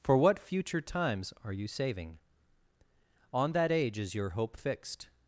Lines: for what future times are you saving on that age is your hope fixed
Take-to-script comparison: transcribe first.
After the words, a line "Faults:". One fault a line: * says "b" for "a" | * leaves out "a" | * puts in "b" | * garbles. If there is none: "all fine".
for what future times are you saving on that age is your hope fixed
Faults:
all fine